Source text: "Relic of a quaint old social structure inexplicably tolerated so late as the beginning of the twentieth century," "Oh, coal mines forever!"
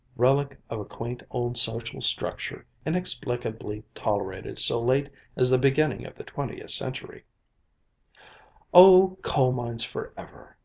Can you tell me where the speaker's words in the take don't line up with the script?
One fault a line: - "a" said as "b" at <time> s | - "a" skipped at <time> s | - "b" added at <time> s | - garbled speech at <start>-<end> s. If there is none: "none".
none